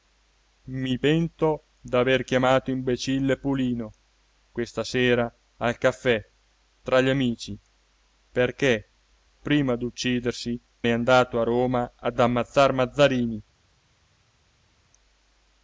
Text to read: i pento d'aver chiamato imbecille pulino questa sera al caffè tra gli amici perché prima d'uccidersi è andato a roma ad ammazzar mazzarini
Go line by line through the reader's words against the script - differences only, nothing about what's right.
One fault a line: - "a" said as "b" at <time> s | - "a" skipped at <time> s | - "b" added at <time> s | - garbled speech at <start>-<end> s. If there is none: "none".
none